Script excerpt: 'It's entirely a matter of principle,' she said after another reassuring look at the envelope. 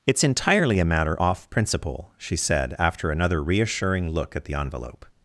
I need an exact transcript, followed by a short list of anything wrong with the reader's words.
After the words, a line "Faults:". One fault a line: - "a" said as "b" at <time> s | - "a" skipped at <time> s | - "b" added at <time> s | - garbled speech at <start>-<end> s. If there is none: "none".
'It's entirely a matter off principle,' she said after another reassuring look at the envelope.
Faults:
- "of" said as "off" at 1.2 s